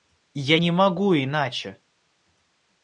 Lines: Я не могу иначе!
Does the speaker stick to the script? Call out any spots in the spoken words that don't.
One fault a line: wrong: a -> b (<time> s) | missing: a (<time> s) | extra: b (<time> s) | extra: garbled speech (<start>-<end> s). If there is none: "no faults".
no faults